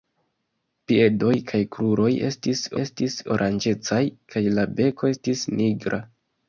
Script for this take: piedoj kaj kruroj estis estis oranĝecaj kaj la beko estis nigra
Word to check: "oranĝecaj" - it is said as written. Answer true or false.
true